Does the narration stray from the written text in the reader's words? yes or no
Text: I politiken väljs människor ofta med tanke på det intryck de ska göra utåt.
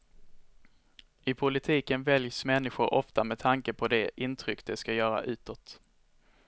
no